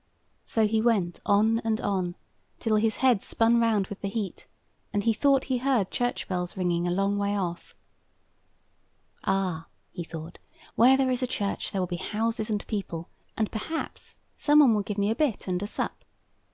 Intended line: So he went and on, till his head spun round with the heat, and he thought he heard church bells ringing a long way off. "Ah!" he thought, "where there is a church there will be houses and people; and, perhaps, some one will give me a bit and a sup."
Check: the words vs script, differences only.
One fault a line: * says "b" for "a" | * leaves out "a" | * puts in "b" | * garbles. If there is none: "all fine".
* puts in "on"